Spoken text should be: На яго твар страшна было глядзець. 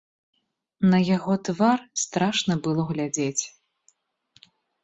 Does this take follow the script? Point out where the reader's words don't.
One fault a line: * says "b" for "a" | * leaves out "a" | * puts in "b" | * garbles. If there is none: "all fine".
all fine